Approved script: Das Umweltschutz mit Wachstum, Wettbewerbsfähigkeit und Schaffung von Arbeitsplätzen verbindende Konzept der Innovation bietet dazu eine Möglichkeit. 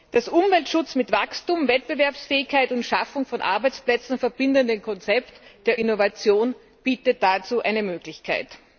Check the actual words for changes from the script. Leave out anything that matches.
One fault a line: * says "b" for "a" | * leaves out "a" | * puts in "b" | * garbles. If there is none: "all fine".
all fine